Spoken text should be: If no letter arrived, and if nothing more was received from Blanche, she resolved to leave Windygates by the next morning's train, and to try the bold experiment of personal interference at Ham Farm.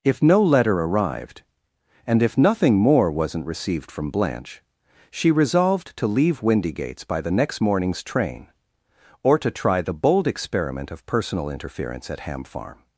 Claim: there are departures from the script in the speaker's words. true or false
true